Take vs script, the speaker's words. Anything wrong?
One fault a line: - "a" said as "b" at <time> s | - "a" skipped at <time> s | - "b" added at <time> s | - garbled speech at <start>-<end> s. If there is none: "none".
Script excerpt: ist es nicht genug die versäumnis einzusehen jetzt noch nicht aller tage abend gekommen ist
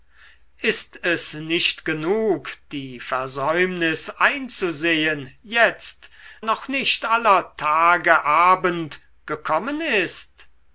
none